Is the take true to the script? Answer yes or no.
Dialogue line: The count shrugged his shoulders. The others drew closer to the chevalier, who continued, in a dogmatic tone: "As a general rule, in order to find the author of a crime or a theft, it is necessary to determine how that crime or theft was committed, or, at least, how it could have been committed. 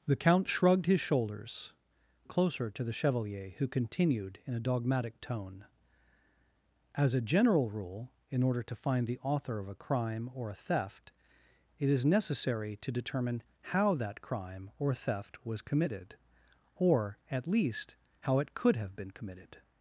no